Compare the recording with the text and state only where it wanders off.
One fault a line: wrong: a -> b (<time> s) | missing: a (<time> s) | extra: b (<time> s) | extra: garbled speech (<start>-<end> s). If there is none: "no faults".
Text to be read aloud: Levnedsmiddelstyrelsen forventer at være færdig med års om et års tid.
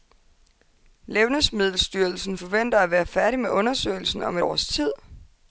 wrong: års -> undersøgelsen (3.5 s)